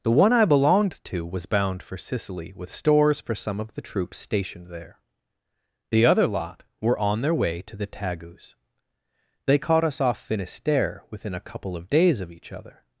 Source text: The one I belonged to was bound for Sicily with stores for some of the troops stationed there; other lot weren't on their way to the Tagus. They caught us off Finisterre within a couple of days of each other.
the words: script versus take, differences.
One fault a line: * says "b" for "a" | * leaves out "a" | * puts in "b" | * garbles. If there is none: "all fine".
* puts in "the"
* says "were" for "weren't"